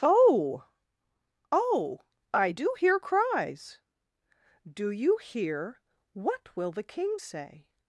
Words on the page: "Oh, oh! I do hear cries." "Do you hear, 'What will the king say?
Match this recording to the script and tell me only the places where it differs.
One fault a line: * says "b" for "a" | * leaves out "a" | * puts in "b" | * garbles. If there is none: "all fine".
all fine